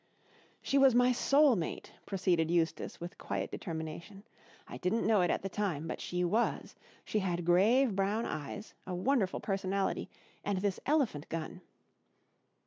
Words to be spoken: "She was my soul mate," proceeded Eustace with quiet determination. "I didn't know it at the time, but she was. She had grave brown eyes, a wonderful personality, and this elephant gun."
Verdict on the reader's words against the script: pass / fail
pass